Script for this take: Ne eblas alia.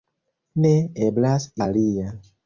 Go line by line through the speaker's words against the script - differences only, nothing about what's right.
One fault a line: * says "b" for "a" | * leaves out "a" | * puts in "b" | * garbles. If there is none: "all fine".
all fine